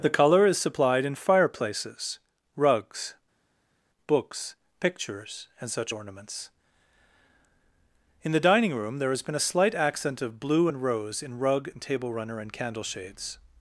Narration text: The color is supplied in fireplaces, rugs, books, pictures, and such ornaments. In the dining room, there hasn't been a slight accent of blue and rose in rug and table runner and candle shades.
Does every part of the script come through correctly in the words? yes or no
no